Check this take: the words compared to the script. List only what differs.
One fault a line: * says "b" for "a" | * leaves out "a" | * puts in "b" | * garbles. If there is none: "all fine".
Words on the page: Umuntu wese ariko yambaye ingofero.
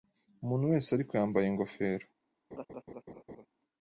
all fine